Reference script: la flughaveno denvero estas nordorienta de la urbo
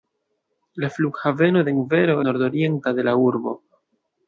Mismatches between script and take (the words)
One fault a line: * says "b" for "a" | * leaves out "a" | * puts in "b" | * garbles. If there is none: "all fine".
* leaves out "estas"